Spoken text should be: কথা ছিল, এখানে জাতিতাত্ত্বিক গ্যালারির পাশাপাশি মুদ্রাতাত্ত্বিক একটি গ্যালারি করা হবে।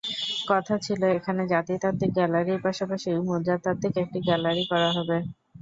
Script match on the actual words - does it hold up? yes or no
yes